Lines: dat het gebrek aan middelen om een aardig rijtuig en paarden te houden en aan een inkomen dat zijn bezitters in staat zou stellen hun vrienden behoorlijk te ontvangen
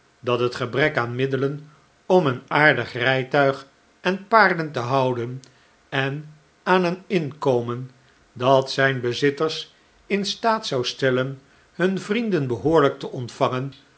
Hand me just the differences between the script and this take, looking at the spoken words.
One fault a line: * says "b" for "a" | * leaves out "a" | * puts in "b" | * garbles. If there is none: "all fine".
all fine